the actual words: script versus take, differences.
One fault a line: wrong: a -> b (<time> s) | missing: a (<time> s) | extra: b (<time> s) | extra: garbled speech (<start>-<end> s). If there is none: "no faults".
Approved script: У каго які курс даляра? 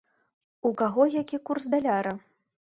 no faults